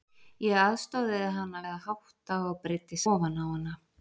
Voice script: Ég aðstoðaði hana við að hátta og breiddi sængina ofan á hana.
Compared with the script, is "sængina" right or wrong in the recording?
wrong